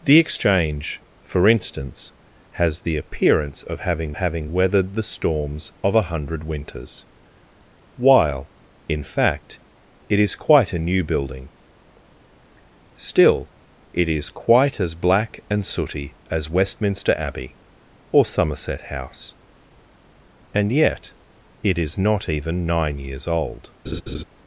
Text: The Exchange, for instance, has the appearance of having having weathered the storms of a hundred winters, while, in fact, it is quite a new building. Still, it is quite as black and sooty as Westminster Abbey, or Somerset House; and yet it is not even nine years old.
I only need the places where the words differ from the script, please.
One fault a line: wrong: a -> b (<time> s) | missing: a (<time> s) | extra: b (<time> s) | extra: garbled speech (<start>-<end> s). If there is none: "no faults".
no faults